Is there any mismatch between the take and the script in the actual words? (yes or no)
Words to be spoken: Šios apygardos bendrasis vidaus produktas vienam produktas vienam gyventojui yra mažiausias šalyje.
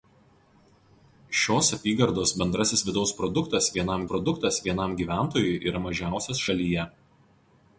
no